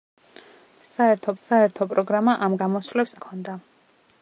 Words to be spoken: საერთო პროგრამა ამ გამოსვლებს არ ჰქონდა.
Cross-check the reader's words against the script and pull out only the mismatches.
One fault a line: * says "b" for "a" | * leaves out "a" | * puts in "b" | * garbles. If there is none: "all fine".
* puts in "საერთო"
* leaves out "არ"